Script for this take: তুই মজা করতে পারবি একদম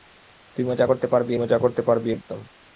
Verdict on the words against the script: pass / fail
fail